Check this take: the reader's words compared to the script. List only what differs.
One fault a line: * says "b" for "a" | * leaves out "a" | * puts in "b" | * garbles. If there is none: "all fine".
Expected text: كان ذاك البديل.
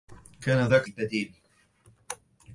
all fine